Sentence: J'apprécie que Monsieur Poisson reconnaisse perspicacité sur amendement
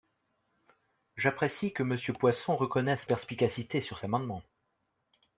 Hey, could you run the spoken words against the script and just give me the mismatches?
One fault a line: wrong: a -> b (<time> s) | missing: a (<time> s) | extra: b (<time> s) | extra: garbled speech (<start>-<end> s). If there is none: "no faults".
no faults